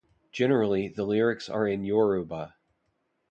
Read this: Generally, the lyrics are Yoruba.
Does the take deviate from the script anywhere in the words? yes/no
yes